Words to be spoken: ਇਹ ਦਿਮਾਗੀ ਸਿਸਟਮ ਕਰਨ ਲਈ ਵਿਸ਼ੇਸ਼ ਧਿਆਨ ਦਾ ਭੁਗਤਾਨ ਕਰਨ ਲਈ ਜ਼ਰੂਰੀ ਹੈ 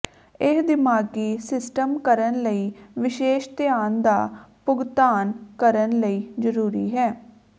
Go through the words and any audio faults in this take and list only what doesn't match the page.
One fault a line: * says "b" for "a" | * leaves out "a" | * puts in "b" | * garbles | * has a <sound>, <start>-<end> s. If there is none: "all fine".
all fine